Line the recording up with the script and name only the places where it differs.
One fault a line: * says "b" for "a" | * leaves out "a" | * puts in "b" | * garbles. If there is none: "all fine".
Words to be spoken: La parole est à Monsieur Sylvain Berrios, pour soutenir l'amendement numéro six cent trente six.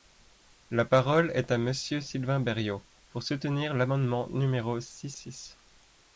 * leaves out "cent trente"